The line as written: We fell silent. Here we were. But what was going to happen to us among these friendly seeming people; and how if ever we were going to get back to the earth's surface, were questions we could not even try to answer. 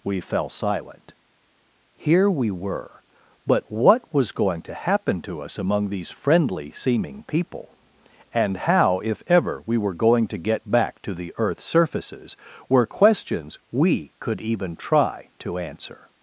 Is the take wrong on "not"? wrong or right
wrong